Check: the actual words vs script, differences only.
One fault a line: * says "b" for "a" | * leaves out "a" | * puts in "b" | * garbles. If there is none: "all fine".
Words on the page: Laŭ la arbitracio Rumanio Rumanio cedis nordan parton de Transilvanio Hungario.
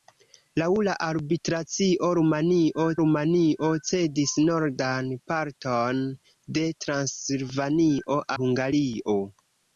all fine